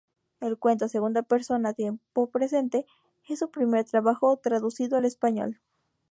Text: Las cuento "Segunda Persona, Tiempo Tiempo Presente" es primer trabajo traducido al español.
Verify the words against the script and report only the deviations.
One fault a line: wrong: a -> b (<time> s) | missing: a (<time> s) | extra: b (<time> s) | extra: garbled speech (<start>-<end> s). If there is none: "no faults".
wrong: Las -> El (0.4 s)
missing: Tiempo (2.3 s)
extra: su (3.4 s)